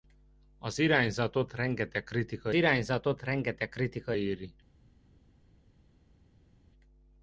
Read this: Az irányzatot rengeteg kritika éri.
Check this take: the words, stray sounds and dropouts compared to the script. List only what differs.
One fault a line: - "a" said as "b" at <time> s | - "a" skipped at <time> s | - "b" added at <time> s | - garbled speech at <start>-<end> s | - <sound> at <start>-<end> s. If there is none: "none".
- "irányzatot rengeteg kritika" added at 2.5 s